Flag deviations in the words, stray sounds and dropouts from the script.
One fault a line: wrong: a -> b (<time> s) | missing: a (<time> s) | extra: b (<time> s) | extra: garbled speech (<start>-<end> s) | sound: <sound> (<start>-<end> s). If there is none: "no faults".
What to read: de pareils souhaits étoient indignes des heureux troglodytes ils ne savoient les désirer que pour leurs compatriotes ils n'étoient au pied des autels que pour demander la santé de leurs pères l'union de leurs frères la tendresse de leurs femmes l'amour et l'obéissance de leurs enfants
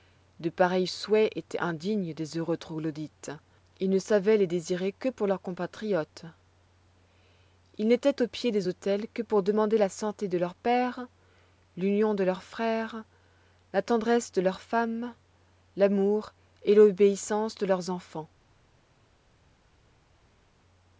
no faults